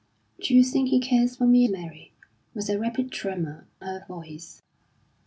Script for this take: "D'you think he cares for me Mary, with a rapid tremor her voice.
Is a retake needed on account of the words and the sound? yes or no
no